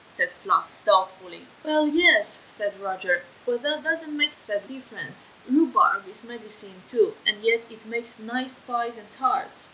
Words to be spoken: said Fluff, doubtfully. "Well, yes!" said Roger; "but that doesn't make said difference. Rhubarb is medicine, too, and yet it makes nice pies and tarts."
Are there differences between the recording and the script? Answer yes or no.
no